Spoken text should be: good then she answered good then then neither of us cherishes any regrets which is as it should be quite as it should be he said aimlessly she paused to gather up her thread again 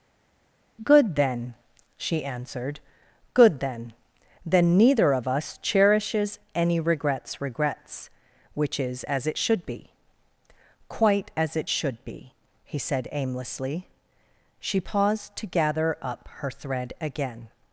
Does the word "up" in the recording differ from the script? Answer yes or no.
no